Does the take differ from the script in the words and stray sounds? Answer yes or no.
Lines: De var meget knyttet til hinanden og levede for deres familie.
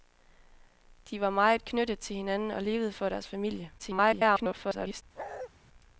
yes